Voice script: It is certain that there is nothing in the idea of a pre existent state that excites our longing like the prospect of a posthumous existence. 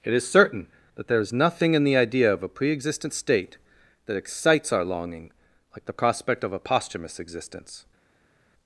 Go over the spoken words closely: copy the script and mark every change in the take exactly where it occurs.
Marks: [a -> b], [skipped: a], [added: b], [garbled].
It is certain that there is nothing in the idea of a pre existent state that excites our longing like the prospect of a posthumous existence.